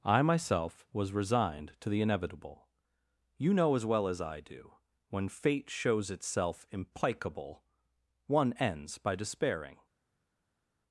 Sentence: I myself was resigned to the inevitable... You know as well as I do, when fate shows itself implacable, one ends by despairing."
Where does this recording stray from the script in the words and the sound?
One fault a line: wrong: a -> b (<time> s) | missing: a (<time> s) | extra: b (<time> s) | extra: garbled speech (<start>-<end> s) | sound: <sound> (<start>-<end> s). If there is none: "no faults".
no faults